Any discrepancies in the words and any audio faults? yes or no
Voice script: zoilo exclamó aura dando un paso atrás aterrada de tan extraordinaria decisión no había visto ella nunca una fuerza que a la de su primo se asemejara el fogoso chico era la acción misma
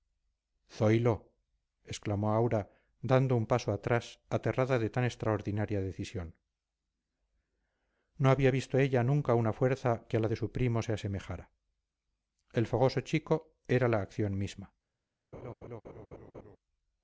yes